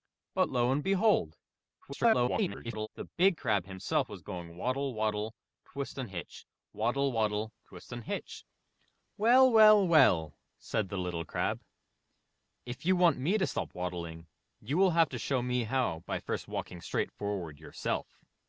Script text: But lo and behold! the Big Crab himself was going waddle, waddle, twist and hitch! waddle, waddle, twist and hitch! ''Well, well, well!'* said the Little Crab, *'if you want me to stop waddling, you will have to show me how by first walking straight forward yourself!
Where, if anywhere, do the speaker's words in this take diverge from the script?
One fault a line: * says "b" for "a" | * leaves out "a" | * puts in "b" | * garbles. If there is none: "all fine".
* garbles